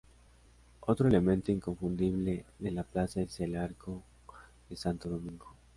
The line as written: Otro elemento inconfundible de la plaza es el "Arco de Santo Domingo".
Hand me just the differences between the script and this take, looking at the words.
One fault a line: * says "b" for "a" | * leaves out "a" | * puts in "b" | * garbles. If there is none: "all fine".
all fine